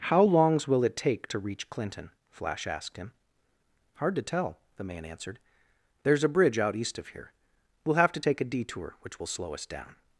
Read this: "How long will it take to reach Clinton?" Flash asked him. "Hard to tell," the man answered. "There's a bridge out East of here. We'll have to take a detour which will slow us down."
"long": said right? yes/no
no